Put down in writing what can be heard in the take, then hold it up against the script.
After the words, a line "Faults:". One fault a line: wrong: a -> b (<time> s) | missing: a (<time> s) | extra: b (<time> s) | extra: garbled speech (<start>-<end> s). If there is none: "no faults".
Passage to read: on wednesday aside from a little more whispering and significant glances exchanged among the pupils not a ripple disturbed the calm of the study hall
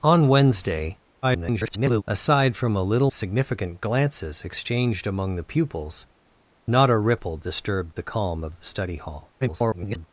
on wednesday [garbled] aside from a little significant glances exchanged among the pupils not a ripple disturbed the calm of the study hall [garbled]
Faults:
extra: garbled speech (1.2-2.0 s)
missing: more whispering and (3.1 s)
extra: garbled speech (9.4-10.1 s)